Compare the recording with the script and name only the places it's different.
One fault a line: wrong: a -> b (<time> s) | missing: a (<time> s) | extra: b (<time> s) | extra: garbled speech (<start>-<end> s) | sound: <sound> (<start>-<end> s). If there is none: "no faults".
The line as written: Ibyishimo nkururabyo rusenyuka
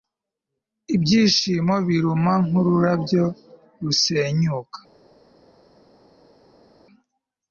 extra: biruma (1.9 s)